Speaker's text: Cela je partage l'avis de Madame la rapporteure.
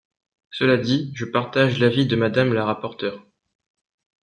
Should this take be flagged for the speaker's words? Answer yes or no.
yes